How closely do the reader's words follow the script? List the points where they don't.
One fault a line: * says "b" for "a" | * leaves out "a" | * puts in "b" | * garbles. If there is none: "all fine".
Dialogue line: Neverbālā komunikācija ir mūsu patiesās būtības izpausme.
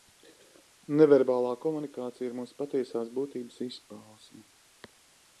all fine